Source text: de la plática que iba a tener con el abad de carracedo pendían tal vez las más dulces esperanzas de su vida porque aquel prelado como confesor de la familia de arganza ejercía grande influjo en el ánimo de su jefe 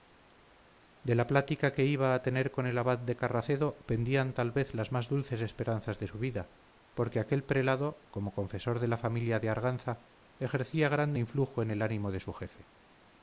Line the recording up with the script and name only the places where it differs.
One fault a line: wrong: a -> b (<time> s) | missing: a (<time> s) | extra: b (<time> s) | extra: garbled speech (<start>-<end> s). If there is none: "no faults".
no faults